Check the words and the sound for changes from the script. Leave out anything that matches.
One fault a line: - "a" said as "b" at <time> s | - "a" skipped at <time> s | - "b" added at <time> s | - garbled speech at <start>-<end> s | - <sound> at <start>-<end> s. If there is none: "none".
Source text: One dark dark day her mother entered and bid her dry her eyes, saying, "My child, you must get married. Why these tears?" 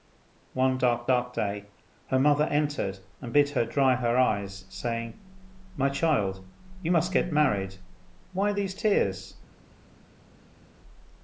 none